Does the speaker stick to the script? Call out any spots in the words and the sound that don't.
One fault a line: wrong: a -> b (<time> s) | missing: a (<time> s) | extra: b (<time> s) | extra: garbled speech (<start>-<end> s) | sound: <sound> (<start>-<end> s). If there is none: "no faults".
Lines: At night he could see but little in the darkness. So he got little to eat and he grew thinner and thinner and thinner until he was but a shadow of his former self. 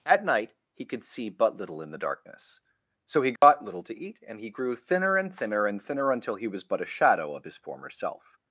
sound: dropout (3.4-3.4 s)